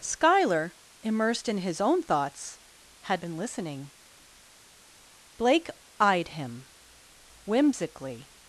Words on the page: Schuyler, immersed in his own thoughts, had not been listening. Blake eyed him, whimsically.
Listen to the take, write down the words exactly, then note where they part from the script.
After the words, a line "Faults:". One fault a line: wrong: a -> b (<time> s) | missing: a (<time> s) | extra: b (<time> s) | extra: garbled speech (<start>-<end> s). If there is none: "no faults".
Schuyler, immersed in his own thoughts, had been listening. Blake eyed him, whimsically.
Faults:
missing: not (3.2 s)